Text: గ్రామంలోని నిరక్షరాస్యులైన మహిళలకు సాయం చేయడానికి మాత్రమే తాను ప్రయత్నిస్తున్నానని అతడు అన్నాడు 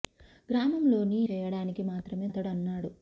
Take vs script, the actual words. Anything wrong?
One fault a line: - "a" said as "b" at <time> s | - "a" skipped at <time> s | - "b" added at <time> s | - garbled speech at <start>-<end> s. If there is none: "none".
- "నిరక్షరాస్యులైన మహిళలకు సాయం" skipped at 1.2 s
- "తాను ప్రయత్నిస్తున్నానని" skipped at 2.3 s